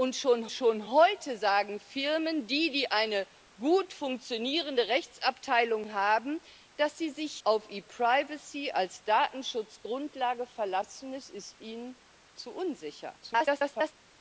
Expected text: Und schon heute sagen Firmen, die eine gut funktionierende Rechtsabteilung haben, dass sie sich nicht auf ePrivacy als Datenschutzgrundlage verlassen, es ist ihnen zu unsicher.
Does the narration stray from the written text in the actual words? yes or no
yes